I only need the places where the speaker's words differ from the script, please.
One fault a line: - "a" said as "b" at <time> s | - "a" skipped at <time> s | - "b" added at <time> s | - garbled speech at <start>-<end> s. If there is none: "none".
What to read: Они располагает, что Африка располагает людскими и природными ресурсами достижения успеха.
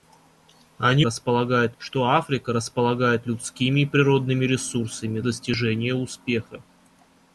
none